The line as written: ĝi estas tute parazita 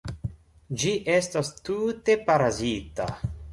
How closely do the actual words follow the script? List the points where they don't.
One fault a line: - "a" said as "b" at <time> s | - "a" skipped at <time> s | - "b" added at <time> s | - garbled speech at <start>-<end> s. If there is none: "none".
none